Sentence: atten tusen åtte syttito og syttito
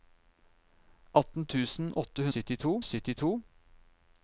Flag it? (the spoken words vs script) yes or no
no